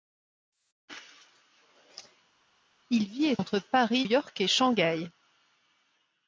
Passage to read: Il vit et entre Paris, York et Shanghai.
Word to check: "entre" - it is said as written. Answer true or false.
true